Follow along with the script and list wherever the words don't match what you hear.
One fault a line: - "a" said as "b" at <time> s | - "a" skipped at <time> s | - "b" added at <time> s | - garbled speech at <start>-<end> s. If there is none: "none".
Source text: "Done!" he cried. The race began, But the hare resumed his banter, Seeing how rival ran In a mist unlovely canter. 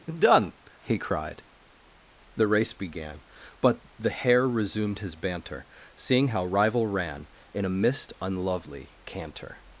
none